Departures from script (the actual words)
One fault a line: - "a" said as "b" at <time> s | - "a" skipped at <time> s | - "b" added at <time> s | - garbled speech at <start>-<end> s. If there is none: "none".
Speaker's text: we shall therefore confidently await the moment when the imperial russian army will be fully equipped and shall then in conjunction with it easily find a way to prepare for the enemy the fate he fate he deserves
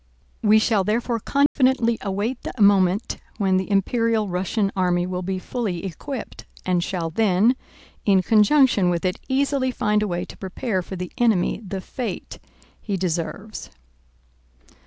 - "fate he" skipped at 13.0 s